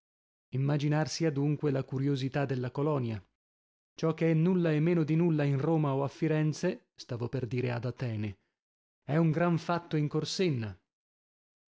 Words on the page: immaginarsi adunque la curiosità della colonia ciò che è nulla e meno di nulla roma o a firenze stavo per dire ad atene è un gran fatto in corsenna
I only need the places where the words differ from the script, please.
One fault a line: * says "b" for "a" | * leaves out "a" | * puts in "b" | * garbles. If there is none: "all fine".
* puts in "in"